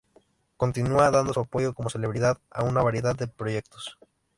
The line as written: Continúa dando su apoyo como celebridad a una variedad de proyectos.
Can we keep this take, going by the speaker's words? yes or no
yes